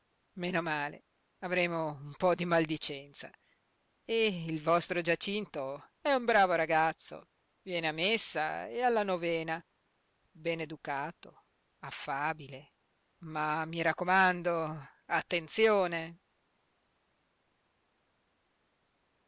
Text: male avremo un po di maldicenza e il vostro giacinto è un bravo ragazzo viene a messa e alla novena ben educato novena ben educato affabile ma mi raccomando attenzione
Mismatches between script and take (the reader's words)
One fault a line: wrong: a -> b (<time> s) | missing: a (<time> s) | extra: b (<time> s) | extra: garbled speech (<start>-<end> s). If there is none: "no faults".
missing: novena ben educato (11.5 s)